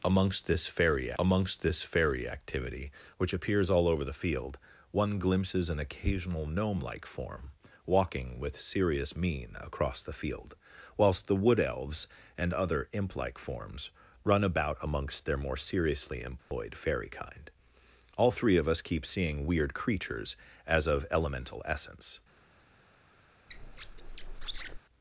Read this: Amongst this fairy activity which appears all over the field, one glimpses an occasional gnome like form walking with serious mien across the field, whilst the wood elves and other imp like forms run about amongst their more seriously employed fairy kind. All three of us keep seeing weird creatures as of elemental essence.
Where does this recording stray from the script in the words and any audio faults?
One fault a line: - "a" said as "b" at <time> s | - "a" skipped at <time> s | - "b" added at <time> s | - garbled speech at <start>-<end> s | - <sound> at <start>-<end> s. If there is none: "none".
- "amongst this fairy" added at 1.2 s
- dropout at 16.4-16.5 s
- squeak at 23.5-24.8 s